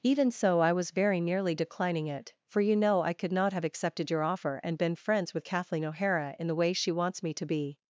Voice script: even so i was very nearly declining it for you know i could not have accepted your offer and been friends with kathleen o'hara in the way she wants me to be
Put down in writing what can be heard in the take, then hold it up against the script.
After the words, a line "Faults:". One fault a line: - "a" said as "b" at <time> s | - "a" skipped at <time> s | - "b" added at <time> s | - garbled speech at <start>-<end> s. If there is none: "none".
even so i was very nearly declining it for you know i could not have accepted your offer and been friends with kathleen o'hara in the way she wants me to be
Faults:
none